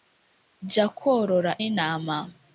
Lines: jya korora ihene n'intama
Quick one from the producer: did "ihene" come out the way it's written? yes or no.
no